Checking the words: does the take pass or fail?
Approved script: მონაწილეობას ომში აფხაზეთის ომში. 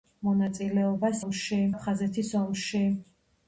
pass